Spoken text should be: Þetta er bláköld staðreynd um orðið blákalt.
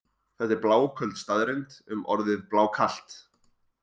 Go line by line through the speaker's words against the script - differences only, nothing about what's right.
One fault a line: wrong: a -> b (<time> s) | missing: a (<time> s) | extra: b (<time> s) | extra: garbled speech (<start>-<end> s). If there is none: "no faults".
no faults